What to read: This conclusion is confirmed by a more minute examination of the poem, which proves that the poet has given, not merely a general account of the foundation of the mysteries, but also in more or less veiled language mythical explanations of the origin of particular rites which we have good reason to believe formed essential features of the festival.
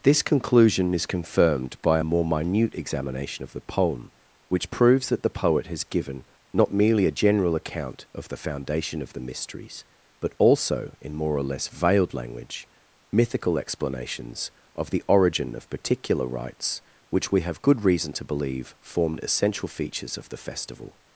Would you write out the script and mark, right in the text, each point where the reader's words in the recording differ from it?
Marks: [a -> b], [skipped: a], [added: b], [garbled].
This conclusion is confirmed by a more minute examination of the poem, which proves that the poet has given, not merely a general account of the foundation of the mysteries, but also in more or less veiled language mythical explanations of the origin of particular rites which we have good reason to believe formed essential features of the festival.